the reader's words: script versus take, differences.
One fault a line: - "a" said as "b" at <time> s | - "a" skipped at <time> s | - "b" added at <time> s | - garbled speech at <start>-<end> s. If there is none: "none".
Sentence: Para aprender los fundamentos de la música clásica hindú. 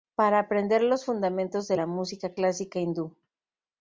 none